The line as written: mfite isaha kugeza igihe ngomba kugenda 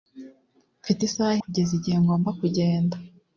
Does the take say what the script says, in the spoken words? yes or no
yes